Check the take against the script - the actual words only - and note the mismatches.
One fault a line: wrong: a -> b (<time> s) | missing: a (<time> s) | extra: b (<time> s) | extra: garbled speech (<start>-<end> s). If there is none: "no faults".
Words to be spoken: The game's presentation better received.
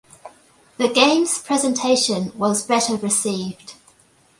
extra: was (2.4 s)